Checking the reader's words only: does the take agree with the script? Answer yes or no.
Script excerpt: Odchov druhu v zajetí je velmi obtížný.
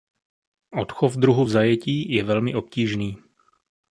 yes